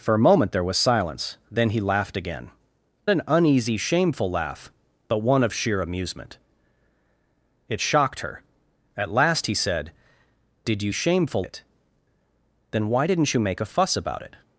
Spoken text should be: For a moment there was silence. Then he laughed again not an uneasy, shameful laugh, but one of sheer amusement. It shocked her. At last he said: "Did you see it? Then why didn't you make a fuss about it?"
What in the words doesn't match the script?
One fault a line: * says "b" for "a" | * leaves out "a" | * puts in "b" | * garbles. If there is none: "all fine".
* leaves out "not"
* says "shameful" for "see"